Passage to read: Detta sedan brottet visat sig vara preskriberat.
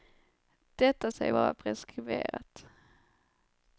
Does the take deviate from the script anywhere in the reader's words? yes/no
yes